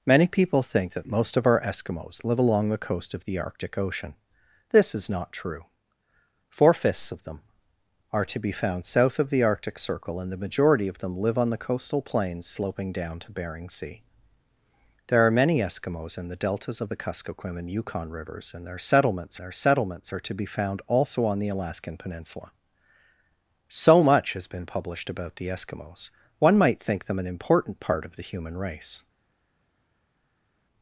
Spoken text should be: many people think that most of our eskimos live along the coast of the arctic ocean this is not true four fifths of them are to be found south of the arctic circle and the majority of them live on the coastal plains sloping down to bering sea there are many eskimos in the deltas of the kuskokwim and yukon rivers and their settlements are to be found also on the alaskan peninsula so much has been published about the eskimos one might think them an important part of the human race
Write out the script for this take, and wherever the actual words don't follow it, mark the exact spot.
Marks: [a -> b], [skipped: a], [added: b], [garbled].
many people think that most of our eskimos live along the coast of the arctic ocean this is not true four fifths of them are to be found south of the arctic circle and the majority of them live on the coastal plains sloping down to bering sea there are many eskimos in the deltas of the kuskokwim and yukon rivers and their settlements [added: their settlements] are to be found also on the alaskan peninsula so much has been published about the eskimos one might think them an important part of the human race